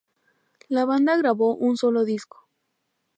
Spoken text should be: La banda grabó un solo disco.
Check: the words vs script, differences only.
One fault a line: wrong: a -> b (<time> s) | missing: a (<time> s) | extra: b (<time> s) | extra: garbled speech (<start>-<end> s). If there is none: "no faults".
no faults